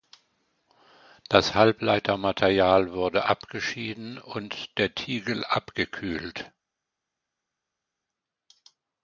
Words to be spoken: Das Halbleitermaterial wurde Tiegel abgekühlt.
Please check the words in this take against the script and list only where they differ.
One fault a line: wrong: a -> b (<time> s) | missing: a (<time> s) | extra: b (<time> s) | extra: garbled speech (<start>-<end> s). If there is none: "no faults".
extra: abgeschieden und der (3.2 s)